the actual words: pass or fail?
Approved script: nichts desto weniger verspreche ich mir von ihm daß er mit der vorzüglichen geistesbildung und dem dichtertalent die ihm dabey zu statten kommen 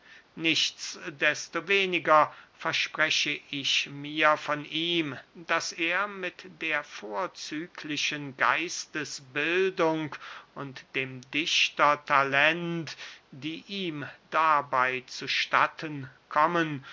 pass